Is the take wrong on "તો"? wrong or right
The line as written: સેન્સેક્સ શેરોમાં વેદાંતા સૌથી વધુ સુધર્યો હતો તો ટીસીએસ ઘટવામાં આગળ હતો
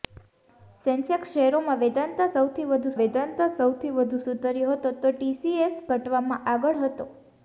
right